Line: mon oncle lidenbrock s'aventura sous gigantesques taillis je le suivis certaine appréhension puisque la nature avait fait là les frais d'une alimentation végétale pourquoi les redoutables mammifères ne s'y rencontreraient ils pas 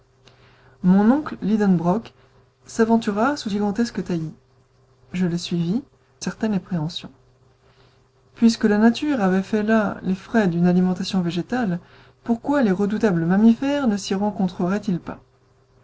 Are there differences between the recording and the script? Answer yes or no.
no